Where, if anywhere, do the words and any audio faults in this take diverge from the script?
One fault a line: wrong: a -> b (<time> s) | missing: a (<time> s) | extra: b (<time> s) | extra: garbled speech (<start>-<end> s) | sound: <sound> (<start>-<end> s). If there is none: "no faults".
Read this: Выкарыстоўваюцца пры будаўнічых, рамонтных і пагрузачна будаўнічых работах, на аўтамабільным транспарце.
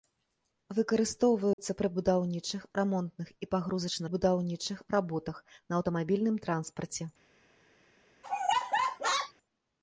sound: dropout (1.5-1.6 s)
sound: laugh (8.2-9.3 s)